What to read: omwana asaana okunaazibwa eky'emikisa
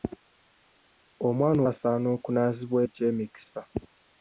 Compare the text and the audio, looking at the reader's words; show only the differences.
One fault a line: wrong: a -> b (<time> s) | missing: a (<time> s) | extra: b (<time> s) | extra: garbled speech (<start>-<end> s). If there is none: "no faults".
no faults